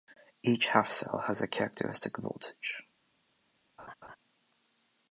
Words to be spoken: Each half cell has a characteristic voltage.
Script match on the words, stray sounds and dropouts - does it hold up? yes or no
no